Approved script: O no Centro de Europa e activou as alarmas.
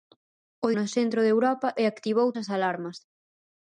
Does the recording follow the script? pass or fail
pass